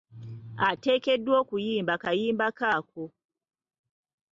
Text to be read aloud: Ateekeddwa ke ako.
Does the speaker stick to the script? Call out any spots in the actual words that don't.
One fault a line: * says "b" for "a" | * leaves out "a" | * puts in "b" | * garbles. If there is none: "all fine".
* puts in "okuyimba kayimba"